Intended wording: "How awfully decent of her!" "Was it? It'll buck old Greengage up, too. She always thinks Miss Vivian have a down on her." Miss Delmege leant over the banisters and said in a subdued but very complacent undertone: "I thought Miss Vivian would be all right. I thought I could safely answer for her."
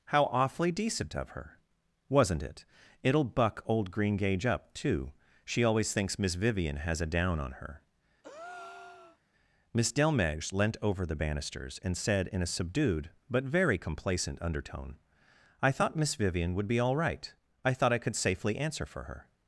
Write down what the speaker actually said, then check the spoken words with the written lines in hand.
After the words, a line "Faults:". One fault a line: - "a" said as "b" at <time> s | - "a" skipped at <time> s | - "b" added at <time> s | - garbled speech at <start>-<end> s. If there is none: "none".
"How awfully decent of her!" "Wasn't it? It'll buck old Greengage up, too. She always thinks Miss Vivian has a down on her." Miss Delmege leant over the banisters and said in a subdued but very complacent undertone: "I thought Miss Vivian would be all right. I thought I could safely answer for her."
Faults:
- "Was" said as "Wasn't" at 2.1 s
- "have" said as "has" at 6.8 s